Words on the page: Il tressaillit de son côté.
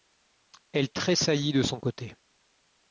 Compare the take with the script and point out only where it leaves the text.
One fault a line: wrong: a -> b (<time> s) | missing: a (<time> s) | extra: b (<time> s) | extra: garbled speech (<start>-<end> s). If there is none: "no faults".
wrong: Il -> Elle (0.7 s)